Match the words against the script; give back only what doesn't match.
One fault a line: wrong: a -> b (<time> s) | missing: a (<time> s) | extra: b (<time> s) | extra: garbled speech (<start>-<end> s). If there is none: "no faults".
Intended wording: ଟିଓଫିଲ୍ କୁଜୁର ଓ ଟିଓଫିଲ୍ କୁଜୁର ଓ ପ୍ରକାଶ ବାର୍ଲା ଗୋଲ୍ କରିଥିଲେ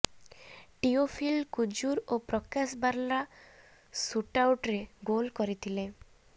missing: ଟିଓଫିଲ୍ କୁଜୁର ଓ (2.2 s)
extra: ସୁଟ୍ଆଉଟ୍ରେ (3.9 s)